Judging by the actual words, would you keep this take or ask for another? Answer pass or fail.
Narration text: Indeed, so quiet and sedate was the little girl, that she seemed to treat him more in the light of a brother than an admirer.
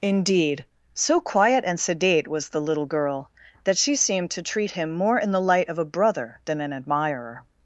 pass